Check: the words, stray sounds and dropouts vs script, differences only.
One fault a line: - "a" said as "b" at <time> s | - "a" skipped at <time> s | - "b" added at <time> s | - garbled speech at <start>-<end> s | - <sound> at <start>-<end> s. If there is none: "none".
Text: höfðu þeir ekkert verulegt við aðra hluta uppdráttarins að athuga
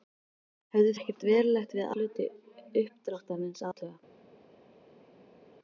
- "þeir" skipped at 0.9 s
- "aðra" skipped at 1.9 s
- "að" skipped at 3.7 s